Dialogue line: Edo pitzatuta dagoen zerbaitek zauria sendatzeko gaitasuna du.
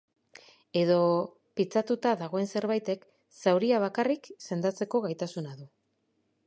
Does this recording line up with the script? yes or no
no